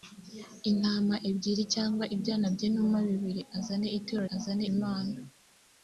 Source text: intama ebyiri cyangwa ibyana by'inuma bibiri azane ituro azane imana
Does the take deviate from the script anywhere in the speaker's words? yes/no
no